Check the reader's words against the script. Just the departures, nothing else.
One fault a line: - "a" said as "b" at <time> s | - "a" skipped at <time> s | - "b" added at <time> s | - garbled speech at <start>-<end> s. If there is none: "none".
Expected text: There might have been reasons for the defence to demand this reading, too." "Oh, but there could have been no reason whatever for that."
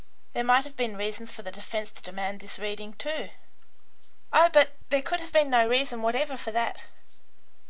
none